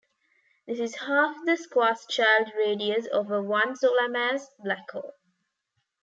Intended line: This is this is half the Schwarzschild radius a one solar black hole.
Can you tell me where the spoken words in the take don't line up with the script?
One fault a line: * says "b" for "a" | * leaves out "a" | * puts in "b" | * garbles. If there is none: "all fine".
* leaves out "this is"
* puts in "of"
* puts in "mass"